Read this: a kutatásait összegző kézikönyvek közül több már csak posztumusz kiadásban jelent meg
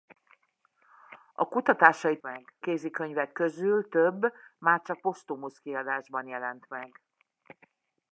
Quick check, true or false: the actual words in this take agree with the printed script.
false